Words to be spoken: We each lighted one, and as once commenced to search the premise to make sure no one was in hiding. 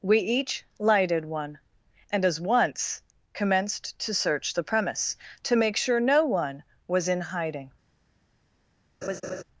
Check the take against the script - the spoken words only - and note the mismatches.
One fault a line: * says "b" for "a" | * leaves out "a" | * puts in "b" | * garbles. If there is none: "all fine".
all fine